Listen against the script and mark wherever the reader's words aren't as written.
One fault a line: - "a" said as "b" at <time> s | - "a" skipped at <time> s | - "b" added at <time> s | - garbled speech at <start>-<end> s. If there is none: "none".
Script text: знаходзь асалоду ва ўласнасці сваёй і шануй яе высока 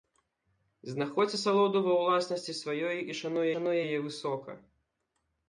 - "шануй" added at 3.5 s